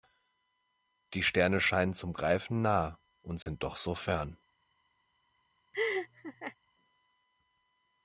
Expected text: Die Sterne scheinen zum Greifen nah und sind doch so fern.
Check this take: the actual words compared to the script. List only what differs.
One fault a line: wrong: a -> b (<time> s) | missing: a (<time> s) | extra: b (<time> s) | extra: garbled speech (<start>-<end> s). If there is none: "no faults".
no faults